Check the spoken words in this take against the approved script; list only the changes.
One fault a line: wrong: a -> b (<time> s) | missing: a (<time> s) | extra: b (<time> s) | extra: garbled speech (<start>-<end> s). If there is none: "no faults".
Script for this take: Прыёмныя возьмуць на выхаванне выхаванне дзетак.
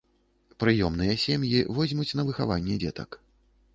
extra: сем'і (1.2 s)
missing: выхаванне (2.8 s)